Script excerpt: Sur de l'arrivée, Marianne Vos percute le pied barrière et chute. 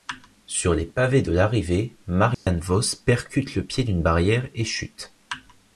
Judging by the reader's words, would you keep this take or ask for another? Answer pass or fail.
fail